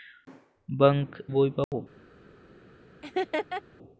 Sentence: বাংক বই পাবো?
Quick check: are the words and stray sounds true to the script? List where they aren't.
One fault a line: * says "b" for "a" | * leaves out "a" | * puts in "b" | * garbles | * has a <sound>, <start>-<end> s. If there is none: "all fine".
* has a dropout, 1.6-1.7 s
* has a laugh, 3.0-3.6 s